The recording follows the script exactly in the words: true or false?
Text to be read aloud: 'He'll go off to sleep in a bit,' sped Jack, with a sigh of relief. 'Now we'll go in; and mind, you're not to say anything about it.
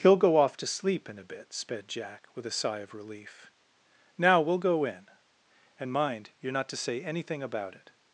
true